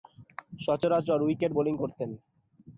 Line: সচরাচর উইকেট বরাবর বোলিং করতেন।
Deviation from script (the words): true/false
true